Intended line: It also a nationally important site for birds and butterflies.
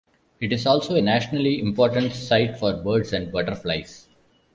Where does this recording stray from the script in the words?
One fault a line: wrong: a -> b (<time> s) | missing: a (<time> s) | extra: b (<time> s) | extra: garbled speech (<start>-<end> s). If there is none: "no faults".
extra: is (0.5 s)